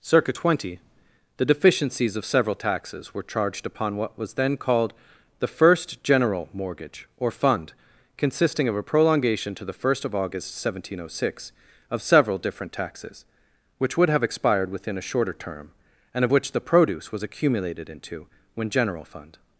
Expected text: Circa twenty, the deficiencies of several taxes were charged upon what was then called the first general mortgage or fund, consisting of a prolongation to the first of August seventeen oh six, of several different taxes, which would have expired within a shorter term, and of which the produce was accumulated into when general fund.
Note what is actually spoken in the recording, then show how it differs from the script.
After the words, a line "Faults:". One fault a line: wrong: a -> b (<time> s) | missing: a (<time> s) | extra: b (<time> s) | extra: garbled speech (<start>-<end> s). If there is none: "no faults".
Circa twenty, the deficiencies of several taxes were charged upon what was then called the first general mortgage or fund, consisting of a prolongation to the first of August seventeen oh six, of several different taxes, which would have expired within a shorter term, and of which the produce was accumulated into when general fund.
Faults:
no faults